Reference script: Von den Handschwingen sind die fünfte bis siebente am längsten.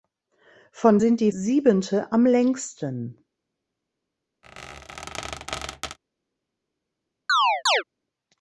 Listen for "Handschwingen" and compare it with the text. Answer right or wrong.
wrong